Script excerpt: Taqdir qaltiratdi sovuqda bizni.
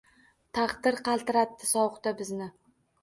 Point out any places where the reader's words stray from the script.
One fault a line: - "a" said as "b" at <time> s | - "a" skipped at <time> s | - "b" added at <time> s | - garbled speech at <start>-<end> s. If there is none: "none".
none